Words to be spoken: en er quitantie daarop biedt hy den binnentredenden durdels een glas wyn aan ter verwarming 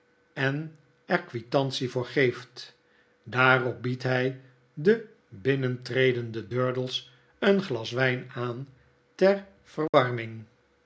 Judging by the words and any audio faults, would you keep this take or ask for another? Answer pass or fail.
fail